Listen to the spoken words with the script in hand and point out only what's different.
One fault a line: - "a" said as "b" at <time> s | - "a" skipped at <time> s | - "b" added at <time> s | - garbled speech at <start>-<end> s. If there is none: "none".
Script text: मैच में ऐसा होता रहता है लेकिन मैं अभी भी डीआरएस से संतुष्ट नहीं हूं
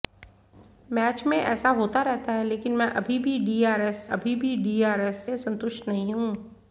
- "अभी भी डीआरएस" added at 4.1 s